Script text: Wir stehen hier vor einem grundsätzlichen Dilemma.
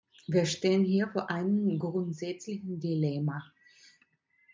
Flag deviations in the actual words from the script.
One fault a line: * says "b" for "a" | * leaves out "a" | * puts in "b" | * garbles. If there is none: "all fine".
all fine